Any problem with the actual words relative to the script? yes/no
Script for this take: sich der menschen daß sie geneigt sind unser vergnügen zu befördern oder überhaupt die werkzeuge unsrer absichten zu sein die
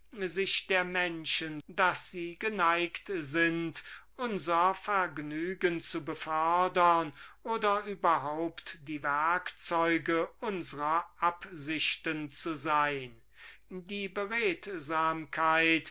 no